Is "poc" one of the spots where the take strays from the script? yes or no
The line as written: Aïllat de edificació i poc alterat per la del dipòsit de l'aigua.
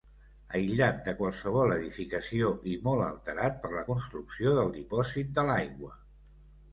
yes